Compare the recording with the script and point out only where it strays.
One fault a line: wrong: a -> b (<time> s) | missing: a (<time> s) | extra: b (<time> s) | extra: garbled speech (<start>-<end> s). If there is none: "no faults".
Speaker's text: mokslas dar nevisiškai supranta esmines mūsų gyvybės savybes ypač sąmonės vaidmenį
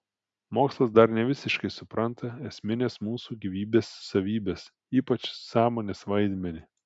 no faults